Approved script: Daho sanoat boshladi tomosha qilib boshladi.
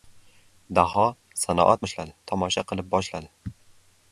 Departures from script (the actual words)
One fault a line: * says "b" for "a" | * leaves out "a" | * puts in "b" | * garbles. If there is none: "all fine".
all fine